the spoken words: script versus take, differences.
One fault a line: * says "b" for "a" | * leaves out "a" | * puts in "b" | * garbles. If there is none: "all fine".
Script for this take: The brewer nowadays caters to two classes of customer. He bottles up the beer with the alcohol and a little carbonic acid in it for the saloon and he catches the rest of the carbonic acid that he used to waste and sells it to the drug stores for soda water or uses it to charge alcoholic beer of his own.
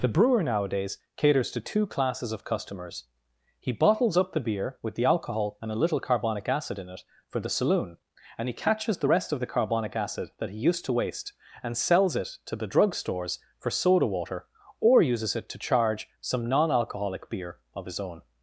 * says "customers" for "customer"
* puts in "some non"